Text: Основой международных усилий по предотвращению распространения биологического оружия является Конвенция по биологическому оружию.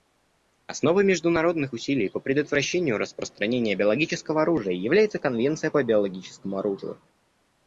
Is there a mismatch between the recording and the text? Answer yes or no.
no